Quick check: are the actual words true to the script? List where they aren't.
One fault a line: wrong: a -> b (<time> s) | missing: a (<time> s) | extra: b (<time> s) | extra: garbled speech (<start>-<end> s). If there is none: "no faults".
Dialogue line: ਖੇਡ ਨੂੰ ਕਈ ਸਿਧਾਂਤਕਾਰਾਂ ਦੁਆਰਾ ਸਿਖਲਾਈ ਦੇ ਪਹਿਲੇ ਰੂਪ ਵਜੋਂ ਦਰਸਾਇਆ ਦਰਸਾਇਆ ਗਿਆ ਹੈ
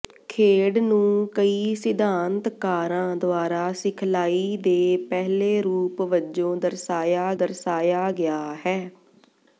no faults